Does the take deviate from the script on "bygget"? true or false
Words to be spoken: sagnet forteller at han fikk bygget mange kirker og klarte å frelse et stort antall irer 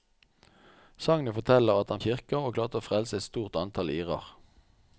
true